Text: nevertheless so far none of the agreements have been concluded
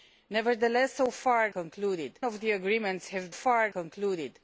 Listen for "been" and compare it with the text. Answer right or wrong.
wrong